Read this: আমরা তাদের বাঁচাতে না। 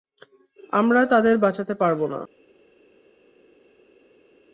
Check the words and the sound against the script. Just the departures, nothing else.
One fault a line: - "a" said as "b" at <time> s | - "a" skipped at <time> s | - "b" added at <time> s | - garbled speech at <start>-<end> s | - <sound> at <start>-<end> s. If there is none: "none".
- "পারব" added at 1.8 s